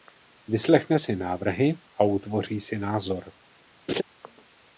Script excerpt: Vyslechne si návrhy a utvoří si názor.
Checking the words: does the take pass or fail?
pass